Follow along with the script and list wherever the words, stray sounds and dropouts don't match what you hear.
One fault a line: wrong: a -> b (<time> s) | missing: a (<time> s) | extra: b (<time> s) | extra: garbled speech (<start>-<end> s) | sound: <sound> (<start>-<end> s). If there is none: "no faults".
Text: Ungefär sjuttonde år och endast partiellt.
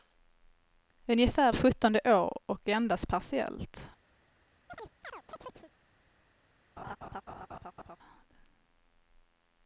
sound: chirp (4.7-5.7 s)
sound: laugh (6.8-8.0 s)